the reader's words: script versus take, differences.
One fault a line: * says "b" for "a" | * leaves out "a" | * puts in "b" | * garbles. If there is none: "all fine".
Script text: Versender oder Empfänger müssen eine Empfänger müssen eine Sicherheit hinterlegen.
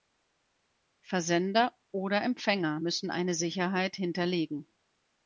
* leaves out "Empfänger müssen eine"